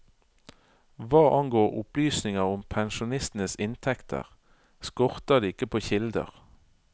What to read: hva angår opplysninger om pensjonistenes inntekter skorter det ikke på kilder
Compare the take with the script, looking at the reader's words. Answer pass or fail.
pass